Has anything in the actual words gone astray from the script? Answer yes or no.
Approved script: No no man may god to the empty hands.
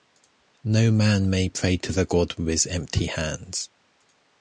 yes